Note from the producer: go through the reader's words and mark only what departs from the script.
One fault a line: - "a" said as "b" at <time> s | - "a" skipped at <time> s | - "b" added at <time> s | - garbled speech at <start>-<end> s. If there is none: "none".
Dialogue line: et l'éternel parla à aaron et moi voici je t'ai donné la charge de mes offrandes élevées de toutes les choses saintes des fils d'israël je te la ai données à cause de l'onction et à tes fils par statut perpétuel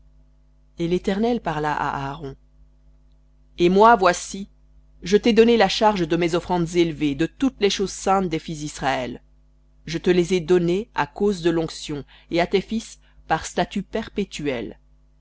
- "la" said as "les" at 10.1 s